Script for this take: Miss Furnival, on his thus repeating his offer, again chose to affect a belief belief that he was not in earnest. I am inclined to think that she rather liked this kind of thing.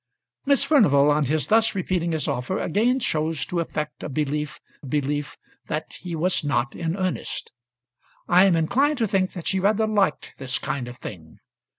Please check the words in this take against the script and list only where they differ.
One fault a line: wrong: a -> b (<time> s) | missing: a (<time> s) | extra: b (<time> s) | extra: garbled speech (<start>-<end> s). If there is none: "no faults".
no faults